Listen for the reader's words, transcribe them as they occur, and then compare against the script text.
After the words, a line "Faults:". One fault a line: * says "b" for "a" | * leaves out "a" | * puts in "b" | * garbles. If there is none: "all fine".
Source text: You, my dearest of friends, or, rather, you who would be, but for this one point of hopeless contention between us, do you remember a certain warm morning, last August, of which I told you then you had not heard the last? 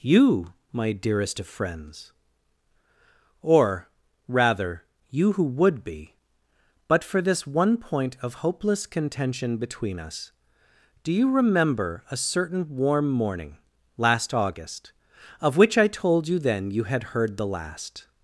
You, my dearest of friends, or, rather, you who would be, but for this one point of hopeless contention between us, do you remember a certain warm morning, last August, of which I told you then you had heard the last?
Faults:
* leaves out "not"